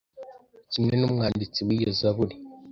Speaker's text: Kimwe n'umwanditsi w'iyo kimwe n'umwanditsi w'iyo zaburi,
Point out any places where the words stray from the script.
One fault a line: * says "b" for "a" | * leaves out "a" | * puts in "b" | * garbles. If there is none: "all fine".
* leaves out "kimwe n'umwanditsi w'iyo"